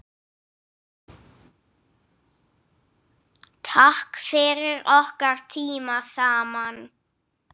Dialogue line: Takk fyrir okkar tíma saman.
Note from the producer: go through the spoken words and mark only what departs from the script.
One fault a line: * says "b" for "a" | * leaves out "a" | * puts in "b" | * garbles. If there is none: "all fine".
all fine